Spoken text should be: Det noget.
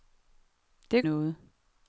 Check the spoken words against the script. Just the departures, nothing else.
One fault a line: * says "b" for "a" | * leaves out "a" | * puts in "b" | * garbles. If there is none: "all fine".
all fine